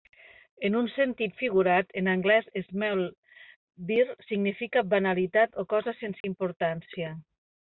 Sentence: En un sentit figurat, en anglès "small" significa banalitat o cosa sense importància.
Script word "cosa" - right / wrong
right